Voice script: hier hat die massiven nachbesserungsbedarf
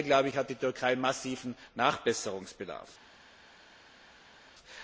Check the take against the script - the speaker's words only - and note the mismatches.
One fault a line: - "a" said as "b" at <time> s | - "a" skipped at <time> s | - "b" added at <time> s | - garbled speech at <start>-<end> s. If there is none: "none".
- "türkei" added at 0.5 s